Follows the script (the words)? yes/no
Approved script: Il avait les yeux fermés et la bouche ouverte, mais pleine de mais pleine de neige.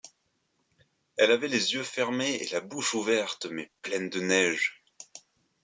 no